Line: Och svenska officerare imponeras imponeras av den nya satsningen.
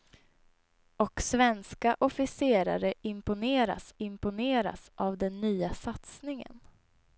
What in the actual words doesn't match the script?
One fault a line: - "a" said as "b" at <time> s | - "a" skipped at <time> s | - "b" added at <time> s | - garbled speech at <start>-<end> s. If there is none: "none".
none